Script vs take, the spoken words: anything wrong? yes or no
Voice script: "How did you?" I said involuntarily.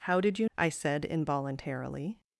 no